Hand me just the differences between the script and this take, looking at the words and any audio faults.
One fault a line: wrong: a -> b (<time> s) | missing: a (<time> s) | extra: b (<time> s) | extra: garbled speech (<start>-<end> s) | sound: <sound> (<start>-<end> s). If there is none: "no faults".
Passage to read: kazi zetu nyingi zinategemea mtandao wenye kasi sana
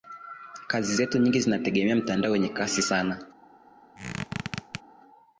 sound: squeak (4.0-4.8 s)